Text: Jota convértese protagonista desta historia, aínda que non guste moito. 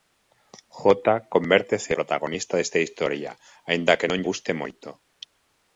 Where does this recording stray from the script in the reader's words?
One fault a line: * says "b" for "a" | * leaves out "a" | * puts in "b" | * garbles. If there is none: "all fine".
all fine